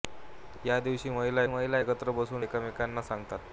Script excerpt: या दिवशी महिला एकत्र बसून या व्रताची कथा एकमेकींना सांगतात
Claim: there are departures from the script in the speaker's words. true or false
true